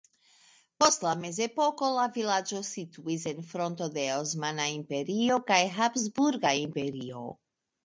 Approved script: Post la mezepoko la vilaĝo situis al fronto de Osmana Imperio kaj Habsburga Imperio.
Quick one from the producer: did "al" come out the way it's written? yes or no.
no